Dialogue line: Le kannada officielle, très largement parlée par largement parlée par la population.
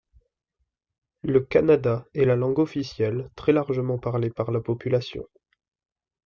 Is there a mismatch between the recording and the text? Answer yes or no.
yes